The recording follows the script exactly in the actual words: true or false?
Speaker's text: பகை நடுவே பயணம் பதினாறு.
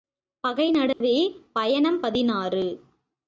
true